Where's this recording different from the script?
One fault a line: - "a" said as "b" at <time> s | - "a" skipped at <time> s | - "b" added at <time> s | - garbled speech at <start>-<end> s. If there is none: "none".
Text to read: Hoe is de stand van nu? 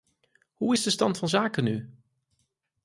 - "zaken" added at 1.3 s